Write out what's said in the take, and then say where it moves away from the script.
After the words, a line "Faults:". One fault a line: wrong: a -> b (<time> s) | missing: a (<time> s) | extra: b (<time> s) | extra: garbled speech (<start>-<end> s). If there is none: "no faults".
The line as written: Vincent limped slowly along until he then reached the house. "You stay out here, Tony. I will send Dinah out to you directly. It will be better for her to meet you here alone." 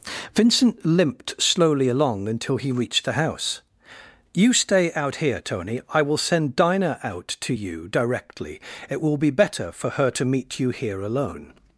Vincent limped slowly along until he reached the house. "You stay out here, Tony. I will send Dinah out to you directly. It will be better for her to meet you here alone."
Faults:
missing: then (2.7 s)